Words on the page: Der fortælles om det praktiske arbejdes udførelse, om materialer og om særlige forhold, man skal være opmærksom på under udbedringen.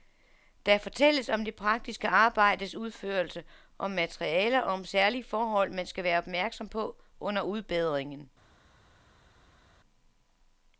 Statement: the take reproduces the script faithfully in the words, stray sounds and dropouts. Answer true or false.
true